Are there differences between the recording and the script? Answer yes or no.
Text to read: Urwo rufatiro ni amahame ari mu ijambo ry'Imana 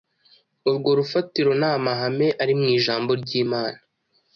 no